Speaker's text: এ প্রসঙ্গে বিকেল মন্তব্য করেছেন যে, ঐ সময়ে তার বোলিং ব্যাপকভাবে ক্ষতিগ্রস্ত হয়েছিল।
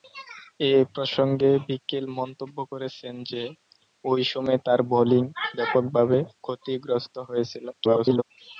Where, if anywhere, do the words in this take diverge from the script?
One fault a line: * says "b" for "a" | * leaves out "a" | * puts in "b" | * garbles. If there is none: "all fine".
* garbles